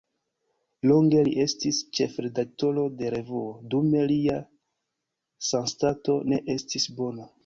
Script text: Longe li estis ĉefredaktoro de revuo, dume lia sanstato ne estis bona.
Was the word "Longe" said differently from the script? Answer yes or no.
no